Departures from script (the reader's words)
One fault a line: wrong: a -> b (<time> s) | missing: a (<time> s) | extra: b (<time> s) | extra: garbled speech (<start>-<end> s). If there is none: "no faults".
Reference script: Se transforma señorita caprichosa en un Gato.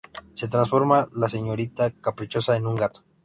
extra: la (1.1 s)